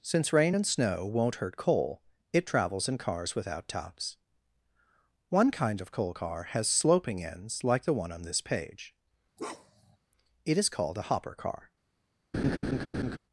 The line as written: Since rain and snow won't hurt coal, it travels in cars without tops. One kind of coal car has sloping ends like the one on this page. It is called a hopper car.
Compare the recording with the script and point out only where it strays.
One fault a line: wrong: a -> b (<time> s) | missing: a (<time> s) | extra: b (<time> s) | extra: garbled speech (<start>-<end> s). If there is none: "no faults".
no faults